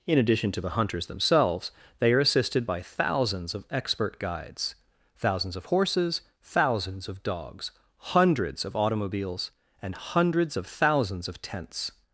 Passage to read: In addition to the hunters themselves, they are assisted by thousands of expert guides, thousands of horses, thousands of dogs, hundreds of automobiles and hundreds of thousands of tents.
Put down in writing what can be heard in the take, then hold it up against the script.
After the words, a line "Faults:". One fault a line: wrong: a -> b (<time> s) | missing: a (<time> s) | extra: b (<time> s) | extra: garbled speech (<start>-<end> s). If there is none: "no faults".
In addition to the hunters themselves, they are assisted by thousands of expert guides, thousands of horses, thousands of dogs, hundreds of automobiles and hundreds of thousands of tents.
Faults:
no faults